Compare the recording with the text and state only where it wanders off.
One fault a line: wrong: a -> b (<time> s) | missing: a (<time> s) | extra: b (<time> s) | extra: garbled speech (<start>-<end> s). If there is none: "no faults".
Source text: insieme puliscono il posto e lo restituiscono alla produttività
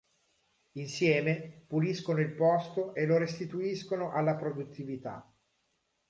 no faults